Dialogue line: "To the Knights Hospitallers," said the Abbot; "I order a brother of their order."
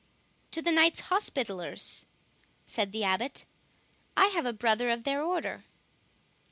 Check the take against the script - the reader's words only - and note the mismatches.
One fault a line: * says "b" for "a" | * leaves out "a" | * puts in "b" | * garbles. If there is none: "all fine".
* says "have" for "order"